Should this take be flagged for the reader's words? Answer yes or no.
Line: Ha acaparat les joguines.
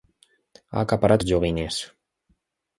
no